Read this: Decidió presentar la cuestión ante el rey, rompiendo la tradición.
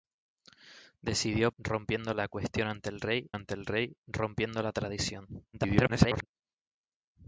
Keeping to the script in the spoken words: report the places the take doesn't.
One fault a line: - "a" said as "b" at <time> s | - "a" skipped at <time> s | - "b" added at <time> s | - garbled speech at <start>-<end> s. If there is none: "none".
- "presentar" said as "rompiendo" at 1.6 s
- "ante el rey" added at 3.3 s
- garbled speech at 5.5-6.3 s